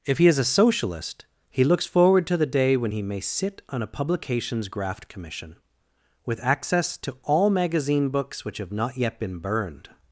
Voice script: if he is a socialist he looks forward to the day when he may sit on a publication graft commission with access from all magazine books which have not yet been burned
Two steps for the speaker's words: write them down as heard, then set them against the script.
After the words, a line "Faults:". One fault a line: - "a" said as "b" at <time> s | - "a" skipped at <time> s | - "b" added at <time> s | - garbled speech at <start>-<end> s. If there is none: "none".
if he is a socialist he looks forward to the day when he may sit on a publications graft commission with access to all magazine books which have not yet been burned
Faults:
- "publication" said as "publications" at 3.9 s
- "from" said as "to" at 7.0 s